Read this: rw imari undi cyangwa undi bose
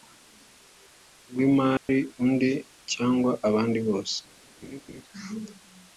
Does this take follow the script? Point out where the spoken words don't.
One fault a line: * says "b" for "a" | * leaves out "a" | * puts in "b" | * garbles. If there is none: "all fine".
* says "abandi" for "undi"